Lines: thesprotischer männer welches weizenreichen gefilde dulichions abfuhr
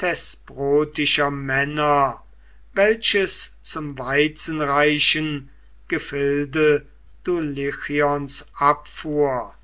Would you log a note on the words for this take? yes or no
yes